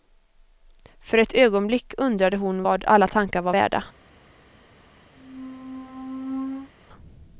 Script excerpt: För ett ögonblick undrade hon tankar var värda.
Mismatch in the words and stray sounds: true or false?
true